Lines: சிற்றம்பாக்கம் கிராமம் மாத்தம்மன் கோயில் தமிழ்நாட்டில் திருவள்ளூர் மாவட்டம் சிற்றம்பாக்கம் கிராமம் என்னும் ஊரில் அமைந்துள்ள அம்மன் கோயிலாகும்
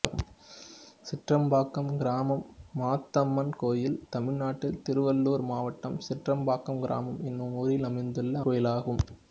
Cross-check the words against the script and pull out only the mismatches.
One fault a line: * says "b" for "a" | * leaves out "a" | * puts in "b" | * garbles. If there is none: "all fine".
* leaves out "அம்மன்"